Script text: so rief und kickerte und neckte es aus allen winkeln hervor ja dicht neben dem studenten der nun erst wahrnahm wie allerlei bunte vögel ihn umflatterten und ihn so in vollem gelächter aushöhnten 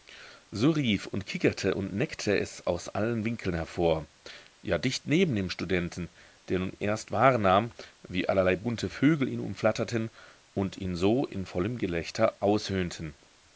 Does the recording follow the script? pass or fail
pass